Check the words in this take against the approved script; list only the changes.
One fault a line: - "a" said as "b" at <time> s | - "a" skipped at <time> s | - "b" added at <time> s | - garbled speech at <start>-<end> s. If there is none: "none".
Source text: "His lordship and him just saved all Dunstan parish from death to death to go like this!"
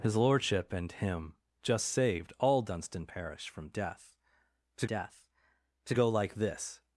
none